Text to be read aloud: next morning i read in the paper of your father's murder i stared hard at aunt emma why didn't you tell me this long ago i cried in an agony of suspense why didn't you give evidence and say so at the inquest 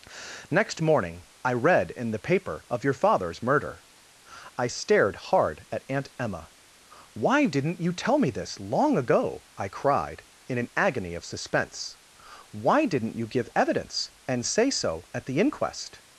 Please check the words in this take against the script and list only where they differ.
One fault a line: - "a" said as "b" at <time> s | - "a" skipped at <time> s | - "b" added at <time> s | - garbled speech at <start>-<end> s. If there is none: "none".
none